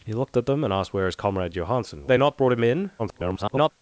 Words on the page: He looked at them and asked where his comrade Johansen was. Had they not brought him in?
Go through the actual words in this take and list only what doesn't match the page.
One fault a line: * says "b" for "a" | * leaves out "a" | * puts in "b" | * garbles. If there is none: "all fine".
* leaves out "was Had"
* garbles